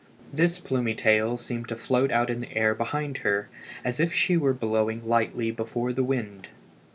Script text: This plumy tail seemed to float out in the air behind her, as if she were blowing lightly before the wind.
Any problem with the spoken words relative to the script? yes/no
no